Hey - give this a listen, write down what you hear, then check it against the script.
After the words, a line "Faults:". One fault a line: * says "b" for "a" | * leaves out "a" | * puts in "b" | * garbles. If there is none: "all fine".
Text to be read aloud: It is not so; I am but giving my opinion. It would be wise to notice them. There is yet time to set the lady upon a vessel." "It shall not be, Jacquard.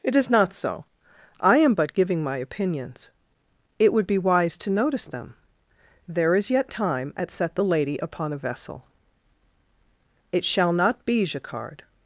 It is not so; I am but giving my opinions. It would be wise to notice them. There is yet time at set the lady upon a vessel." "It shall not be, Jacquard.
Faults:
* says "opinions" for "opinion"
* says "at" for "to"